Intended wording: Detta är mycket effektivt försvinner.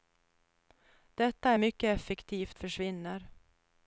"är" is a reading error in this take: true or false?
false